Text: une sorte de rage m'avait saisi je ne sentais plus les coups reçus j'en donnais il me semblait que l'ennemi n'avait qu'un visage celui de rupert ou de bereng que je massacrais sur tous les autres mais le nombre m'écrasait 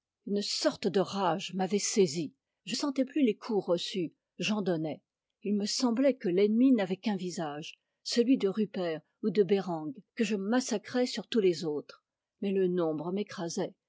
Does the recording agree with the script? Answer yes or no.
no